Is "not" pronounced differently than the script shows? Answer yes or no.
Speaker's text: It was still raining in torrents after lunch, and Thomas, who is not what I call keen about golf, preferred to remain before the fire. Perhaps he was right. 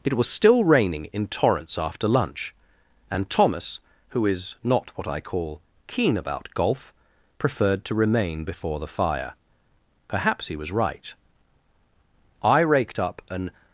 no